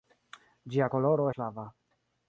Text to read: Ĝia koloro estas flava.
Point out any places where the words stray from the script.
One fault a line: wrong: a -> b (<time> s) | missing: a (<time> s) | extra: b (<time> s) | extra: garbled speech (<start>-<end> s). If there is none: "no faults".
missing: estas (1.3 s)